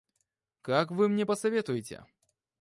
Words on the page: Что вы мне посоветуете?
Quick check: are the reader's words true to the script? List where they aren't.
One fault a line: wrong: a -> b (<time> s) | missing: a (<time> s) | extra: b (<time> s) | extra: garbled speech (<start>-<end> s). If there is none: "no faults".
wrong: Что -> Как (0.6 s)